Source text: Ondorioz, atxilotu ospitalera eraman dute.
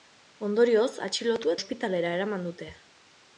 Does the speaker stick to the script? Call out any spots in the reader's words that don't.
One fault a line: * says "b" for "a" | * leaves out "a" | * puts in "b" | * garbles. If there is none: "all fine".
all fine